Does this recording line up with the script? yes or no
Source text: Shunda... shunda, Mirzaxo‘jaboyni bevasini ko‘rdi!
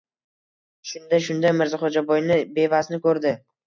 yes